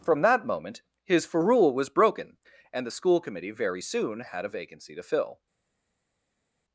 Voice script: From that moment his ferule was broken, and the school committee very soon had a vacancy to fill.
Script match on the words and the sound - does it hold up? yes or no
yes